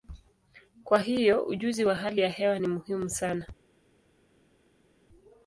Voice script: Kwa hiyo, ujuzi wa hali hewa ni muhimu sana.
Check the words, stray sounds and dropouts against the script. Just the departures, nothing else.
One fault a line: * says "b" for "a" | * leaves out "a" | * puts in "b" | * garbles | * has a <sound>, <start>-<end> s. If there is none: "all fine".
* puts in "ya"